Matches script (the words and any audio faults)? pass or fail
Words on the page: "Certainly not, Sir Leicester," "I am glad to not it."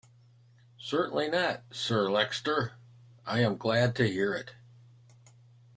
fail